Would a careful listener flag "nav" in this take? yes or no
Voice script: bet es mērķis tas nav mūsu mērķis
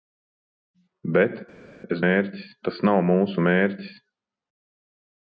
no